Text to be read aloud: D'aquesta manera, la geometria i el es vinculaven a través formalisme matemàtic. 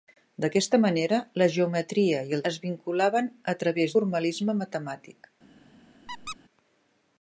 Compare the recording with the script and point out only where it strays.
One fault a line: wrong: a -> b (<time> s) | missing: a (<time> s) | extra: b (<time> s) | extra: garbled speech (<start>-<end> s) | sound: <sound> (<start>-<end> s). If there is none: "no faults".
sound: squeak (6.1-6.4 s)